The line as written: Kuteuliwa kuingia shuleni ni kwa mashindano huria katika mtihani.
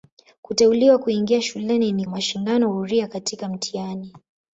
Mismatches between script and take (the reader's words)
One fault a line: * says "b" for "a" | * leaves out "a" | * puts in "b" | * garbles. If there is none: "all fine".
* leaves out "kwa"